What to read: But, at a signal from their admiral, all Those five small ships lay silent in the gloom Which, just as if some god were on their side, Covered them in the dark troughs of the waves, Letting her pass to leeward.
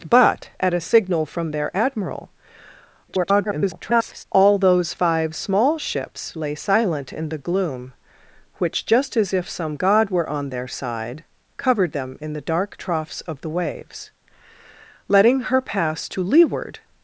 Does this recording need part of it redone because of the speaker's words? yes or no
yes